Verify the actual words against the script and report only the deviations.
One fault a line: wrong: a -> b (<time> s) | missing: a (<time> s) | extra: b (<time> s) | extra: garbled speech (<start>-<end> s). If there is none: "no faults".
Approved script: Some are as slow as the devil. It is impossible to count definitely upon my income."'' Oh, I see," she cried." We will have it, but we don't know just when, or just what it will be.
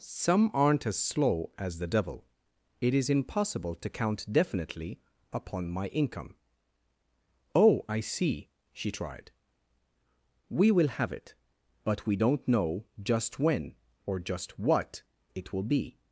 wrong: are -> aren't (0.6 s)
wrong: cried -> tried (8.9 s)